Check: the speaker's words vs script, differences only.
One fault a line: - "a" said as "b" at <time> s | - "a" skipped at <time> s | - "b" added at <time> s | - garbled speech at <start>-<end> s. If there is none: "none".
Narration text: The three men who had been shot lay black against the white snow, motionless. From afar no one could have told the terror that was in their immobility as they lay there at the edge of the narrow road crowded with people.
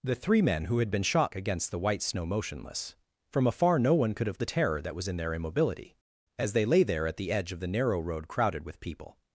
- "lay black" skipped at 1.4 s
- "told" skipped at 4.4 s